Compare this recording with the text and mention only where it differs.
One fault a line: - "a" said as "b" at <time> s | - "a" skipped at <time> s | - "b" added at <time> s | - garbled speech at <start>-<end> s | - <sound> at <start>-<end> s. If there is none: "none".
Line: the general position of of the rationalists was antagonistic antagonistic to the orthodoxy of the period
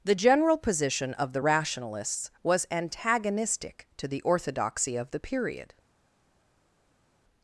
- "of" skipped at 1.3 s
- "antagonistic" skipped at 3.9 s